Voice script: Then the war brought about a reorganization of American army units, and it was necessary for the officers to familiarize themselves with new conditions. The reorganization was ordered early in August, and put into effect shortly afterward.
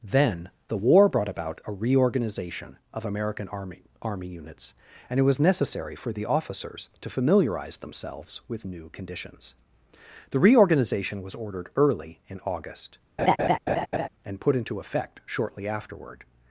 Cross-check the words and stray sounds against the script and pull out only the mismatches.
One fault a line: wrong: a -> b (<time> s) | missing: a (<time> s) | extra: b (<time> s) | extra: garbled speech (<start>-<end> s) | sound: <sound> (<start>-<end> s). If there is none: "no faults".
extra: army (4.0 s)
sound: laugh (13.2-14.1 s)